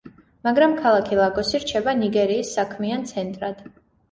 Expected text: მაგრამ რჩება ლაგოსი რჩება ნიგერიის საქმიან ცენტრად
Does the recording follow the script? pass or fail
fail